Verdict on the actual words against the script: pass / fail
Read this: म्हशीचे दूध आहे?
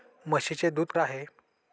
pass